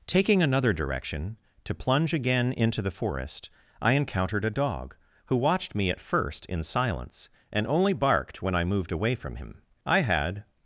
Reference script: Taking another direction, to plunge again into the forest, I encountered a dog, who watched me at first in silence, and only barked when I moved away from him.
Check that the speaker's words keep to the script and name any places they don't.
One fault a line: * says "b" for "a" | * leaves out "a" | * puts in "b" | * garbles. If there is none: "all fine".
* puts in "I had"